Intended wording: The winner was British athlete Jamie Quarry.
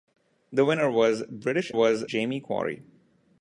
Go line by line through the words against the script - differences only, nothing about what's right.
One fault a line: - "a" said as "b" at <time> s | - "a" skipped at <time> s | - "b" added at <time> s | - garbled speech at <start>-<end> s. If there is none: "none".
- "athlete" said as "was" at 1.7 s